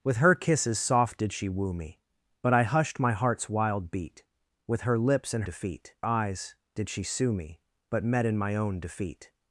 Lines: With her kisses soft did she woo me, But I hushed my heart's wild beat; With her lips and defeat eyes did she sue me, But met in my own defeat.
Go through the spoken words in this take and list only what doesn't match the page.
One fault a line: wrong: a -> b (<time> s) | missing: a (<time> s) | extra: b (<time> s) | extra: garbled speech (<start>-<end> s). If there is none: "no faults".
no faults